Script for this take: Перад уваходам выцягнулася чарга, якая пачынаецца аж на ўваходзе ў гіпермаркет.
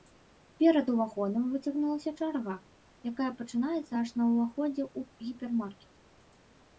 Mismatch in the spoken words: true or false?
false